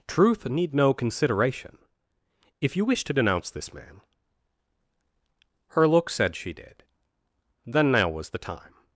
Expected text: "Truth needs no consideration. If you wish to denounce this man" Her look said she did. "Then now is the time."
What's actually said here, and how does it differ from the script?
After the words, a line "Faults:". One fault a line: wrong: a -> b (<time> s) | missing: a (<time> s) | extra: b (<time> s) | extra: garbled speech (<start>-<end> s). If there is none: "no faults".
"Truth need no consideration. If you wish to denounce this man" Her look said she did. "Then now was the time."
Faults:
wrong: needs -> need (0.5 s)
wrong: is -> was (8.1 s)